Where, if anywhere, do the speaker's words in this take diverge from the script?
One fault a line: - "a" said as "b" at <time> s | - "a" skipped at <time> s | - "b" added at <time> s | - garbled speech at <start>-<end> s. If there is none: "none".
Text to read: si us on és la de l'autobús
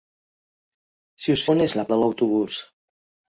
none